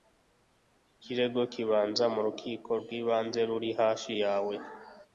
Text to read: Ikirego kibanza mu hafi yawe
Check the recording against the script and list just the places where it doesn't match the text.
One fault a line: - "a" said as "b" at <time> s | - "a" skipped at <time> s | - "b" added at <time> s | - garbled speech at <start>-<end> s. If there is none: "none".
- "rukiko rw'ibanze ruri" added at 2.3 s